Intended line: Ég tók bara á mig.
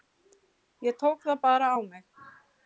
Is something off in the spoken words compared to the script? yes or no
yes